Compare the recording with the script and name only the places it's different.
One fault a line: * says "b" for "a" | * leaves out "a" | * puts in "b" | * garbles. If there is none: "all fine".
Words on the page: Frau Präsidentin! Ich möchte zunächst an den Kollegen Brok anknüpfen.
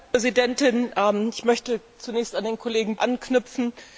* leaves out "Brok"